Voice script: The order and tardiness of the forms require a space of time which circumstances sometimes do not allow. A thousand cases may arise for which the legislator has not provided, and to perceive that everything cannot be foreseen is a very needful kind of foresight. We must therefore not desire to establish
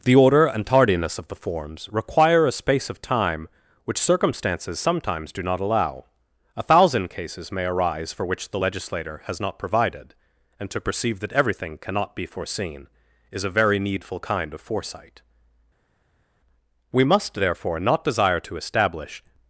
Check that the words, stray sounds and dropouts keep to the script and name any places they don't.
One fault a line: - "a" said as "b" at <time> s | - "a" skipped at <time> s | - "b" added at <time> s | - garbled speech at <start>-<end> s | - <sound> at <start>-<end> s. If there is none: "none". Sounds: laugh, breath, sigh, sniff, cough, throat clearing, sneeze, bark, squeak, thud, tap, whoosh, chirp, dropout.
none